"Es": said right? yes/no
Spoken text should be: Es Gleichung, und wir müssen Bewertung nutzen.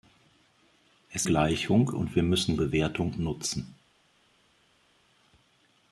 yes